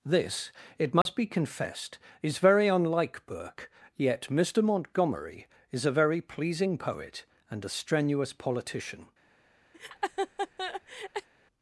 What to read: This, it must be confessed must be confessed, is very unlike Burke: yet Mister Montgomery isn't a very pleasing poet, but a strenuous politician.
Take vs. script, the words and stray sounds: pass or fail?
fail